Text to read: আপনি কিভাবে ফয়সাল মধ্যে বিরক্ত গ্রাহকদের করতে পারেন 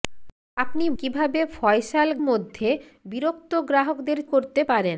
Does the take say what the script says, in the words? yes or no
yes